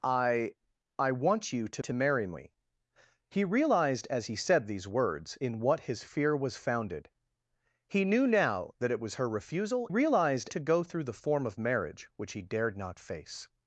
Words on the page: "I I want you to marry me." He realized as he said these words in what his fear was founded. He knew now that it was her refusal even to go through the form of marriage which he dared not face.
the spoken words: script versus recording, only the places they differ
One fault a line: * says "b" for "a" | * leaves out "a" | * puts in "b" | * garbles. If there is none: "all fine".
* puts in "to"
* says "realized" for "even"